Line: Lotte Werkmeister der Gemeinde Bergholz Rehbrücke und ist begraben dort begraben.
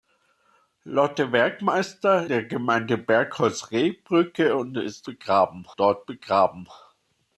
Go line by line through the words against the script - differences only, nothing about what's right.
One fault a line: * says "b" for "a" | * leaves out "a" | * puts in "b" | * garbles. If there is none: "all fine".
all fine